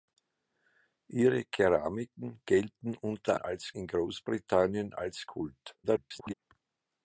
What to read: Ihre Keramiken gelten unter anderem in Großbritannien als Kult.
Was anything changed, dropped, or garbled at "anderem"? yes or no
yes